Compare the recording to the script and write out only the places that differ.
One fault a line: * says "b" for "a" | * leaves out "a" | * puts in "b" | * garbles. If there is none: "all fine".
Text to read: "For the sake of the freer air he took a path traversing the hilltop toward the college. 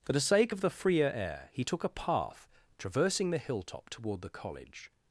all fine